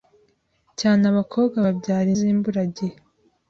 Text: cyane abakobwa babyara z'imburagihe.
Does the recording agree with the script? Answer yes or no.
yes